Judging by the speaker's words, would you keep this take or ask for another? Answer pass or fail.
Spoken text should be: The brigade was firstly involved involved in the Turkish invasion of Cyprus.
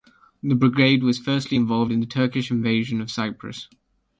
fail